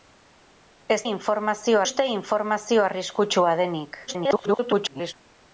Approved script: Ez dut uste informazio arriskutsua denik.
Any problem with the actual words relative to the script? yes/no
yes